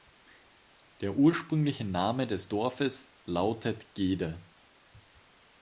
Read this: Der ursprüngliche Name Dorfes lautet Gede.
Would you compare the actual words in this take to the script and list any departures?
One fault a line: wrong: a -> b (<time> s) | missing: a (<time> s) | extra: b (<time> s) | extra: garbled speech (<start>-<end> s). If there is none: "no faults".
extra: des (2.2 s)